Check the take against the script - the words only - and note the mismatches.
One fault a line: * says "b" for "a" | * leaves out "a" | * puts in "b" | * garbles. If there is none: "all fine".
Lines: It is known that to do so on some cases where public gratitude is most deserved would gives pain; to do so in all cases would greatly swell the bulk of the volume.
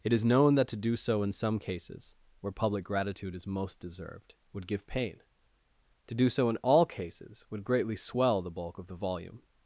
* says "in" for "on"
* says "give" for "gives"